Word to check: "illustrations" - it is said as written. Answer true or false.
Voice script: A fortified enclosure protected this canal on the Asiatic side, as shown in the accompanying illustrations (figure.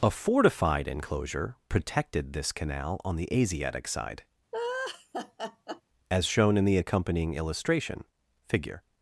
false